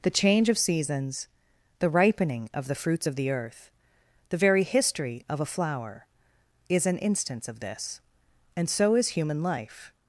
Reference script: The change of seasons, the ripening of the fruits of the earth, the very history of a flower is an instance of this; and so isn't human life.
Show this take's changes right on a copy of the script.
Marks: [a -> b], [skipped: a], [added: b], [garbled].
The change of seasons, the ripening of the fruits of the earth, the very history of a flower is an instance of this; and so [isn't -> is] human life.